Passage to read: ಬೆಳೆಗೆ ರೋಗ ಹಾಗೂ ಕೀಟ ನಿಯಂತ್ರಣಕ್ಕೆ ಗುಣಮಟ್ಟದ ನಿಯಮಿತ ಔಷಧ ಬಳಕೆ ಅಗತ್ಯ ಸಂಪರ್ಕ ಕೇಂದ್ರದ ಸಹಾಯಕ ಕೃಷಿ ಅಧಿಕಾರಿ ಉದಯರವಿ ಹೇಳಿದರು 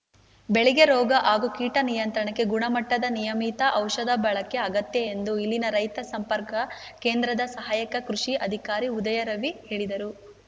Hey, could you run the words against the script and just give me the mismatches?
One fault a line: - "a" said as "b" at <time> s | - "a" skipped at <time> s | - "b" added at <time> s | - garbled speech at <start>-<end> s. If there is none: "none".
- "ಎಂದು ಇಲ್ಲಿನ ರೈತ" added at 5.1 s